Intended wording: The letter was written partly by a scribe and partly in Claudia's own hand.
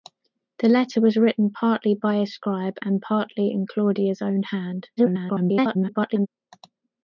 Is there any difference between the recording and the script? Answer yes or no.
yes